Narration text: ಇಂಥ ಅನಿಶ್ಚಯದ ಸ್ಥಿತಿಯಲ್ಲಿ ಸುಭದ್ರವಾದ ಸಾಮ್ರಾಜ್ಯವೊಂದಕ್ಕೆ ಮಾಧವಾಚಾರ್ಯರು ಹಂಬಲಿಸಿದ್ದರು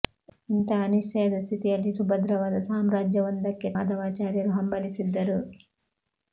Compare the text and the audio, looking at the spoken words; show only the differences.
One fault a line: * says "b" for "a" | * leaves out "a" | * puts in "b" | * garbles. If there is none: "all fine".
all fine